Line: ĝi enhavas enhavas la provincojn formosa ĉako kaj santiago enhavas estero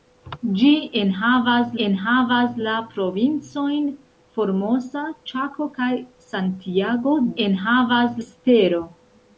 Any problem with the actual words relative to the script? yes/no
no